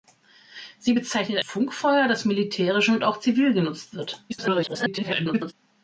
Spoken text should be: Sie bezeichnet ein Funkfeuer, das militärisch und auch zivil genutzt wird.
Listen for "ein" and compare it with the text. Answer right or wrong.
wrong